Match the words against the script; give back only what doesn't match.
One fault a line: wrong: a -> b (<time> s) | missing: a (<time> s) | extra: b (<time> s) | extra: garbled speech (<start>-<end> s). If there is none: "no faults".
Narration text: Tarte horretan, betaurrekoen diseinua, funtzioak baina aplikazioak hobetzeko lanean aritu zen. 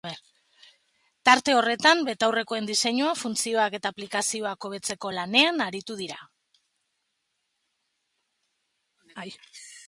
wrong: baina -> eta (3.8 s)
wrong: zen -> dira (6.0 s)